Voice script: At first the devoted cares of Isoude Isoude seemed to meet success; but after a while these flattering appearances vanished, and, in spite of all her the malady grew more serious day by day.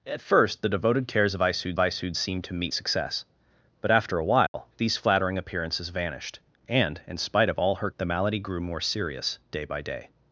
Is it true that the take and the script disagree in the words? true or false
false